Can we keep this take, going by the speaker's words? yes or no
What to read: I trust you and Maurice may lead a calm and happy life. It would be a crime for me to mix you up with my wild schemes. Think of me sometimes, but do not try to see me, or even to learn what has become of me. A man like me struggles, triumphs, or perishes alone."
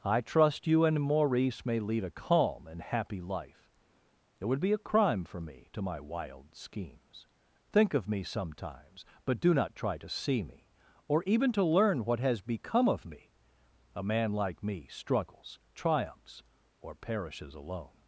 no